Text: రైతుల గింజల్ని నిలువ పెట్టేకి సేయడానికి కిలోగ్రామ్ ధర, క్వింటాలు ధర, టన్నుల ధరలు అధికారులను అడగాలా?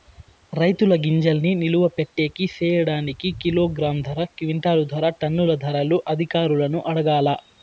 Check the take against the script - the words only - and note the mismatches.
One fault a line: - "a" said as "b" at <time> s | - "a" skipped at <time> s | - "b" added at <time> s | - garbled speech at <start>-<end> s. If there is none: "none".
none